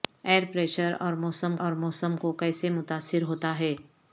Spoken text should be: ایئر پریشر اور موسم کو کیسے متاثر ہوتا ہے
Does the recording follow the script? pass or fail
fail